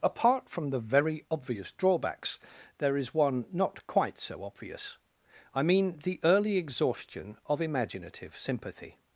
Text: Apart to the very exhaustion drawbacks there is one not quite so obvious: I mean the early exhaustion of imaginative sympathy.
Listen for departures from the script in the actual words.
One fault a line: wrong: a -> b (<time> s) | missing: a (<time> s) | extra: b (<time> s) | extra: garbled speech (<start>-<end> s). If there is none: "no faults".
wrong: to -> from (0.5 s)
wrong: exhaustion -> obvious (1.3 s)